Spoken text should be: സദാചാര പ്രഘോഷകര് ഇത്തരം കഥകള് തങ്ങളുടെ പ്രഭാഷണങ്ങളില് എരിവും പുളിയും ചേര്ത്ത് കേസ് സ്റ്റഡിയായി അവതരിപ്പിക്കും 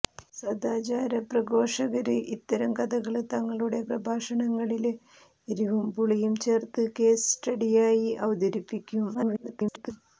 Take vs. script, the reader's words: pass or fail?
fail